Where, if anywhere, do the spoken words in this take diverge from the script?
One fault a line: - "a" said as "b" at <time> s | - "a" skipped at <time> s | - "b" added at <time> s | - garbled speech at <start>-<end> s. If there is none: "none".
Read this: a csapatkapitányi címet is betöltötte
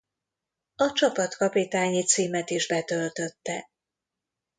none